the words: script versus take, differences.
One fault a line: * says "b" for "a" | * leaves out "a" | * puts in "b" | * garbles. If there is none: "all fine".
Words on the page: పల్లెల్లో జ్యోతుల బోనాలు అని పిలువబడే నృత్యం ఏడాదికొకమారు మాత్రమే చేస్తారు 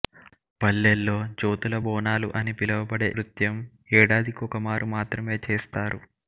all fine